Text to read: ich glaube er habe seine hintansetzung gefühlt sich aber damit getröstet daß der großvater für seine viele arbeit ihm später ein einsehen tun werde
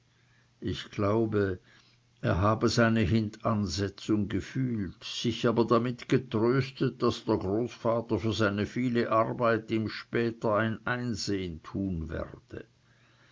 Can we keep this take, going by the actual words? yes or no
yes